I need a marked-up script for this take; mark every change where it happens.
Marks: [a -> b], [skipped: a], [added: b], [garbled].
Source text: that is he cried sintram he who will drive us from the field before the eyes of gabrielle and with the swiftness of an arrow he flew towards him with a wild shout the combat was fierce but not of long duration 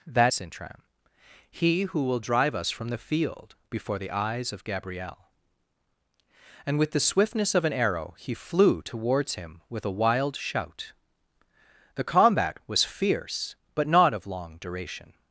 that [skipped: is he cried] sintram he who will drive us from the field before the eyes of gabrielle and with the swiftness of an arrow he flew towards him with a wild shout the combat was fierce but not of long duration